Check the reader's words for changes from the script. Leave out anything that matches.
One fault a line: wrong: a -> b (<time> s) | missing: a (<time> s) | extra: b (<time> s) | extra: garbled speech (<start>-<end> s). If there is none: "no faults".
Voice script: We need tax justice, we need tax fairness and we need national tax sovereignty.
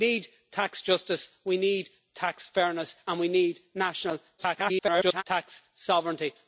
extra: garbled speech (4.4-5.2 s)